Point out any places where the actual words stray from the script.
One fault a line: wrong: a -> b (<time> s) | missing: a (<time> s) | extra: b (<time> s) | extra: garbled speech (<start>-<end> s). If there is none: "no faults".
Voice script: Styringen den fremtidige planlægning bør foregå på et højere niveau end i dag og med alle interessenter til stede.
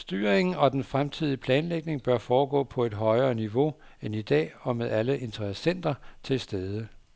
extra: og (0.6 s)